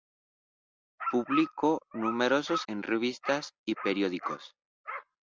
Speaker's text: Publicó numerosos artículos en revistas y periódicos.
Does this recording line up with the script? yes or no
no